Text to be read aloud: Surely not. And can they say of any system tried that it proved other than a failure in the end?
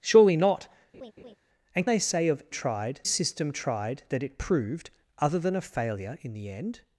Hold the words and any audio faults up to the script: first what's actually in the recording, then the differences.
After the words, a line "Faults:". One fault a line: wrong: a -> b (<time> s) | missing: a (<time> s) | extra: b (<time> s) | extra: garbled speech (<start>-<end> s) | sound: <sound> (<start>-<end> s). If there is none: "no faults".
Surely not. And they say of tried system tried that it proved other than a failure in the end?
Faults:
sound: laugh (0.9-1.4 s)
missing: can (1.9 s)
wrong: any -> tried (2.5 s)